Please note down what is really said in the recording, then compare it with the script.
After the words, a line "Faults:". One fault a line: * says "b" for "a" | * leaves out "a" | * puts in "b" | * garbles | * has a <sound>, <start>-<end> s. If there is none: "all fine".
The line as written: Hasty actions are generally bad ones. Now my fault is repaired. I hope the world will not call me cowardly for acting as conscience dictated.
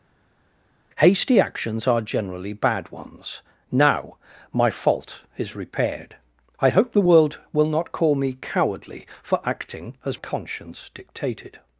Hasty actions are generally bad ones. Now my fault is repaired. I hope the world will not call me cowardly for acting as conscience dictated.
Faults:
all fine